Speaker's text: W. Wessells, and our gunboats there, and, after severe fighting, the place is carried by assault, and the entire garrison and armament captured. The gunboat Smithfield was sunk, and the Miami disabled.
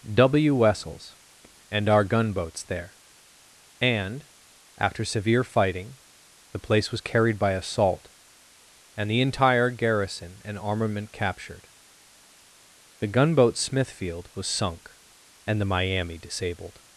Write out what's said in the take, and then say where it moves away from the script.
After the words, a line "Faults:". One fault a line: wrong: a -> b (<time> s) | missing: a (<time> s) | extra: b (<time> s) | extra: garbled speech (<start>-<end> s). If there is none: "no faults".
W. Wessells, and our gunboats there, and, after severe fighting, the place was carried by assault, and the entire garrison and armament captured. The gunboat Smithfield was sunk, and the Miami disabled.
Faults:
wrong: is -> was (6.9 s)